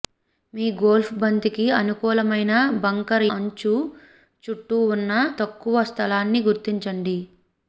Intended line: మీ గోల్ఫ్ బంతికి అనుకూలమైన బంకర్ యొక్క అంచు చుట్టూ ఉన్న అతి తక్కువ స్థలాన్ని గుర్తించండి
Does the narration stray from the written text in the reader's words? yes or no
yes